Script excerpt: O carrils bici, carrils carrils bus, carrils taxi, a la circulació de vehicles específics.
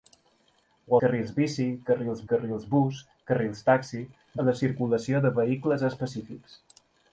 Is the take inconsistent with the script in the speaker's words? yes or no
no